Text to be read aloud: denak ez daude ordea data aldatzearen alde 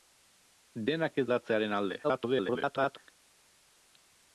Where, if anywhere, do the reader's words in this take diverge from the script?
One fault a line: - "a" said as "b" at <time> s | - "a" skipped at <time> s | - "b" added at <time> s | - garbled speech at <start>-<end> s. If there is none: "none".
- "daude ordea data" skipped at 1.2 s
- garbled speech at 2.0-3.0 s